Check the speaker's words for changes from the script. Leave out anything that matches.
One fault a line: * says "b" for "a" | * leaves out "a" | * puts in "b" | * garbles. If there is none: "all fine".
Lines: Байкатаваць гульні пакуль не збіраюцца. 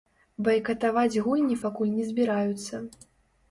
all fine